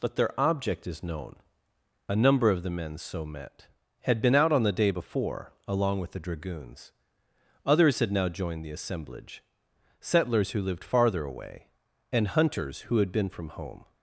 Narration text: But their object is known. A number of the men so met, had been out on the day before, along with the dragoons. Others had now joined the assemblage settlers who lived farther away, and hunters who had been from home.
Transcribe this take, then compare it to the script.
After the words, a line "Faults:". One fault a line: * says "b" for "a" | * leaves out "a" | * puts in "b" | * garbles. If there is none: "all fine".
But their object is known. A number of the men so met, had been out on the day before, along with the dragoons. Others had now joined the assemblage settlers who lived farther away, and hunters who had been from home.
Faults:
all fine